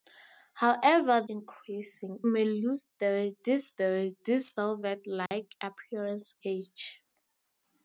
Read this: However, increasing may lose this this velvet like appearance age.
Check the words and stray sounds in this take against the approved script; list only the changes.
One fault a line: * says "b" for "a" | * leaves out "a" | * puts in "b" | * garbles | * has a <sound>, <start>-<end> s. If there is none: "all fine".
* has a dropout, 5.3-5.3 s